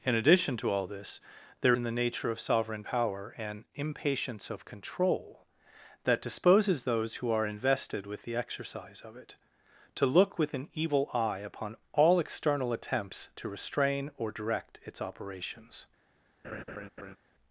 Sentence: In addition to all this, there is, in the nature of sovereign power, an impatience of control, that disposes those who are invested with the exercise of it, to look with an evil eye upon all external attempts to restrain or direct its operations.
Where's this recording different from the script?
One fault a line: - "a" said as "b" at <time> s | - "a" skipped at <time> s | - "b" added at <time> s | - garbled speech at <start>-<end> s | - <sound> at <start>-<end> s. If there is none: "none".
- "is" skipped at 1.8 s
- laugh at 16.4-17.2 s